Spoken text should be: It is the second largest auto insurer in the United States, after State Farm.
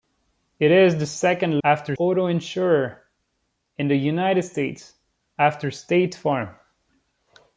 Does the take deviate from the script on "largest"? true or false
true